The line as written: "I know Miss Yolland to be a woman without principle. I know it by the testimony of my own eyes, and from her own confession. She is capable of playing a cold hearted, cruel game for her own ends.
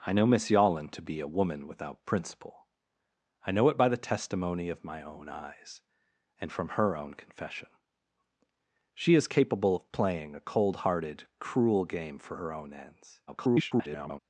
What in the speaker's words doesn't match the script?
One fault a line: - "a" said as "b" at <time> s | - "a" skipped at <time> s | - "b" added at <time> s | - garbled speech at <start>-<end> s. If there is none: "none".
- garbled speech at 13.3-14.2 s